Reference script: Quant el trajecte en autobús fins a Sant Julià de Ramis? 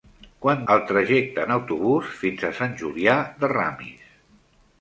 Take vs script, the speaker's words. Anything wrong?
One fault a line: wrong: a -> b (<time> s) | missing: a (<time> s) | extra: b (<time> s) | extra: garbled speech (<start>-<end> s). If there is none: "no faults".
no faults